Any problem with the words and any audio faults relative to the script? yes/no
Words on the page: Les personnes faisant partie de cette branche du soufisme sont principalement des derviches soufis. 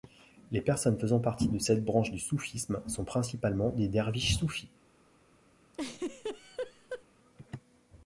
yes